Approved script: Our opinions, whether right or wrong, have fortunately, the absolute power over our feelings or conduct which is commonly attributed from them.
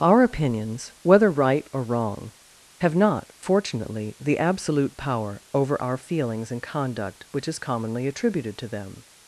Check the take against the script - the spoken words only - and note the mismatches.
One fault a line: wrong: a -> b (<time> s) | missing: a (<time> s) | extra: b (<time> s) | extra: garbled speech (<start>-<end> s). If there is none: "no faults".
extra: not (3.0 s)
wrong: or -> and (6.5 s)
wrong: from -> to (8.6 s)